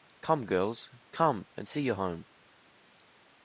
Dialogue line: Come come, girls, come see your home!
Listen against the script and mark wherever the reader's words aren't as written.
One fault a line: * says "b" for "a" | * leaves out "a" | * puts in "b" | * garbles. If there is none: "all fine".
* leaves out "come"
* puts in "and"